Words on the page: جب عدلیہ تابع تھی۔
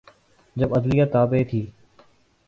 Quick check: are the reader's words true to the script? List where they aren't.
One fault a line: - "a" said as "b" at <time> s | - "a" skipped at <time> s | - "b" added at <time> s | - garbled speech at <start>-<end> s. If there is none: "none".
none